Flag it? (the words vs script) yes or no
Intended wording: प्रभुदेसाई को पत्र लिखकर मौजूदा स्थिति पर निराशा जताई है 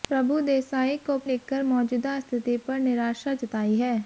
yes